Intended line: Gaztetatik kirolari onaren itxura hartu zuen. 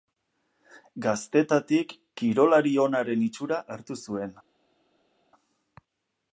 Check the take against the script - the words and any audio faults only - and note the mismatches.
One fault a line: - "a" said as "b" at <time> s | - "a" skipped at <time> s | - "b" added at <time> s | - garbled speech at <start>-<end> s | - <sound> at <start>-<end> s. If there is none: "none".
none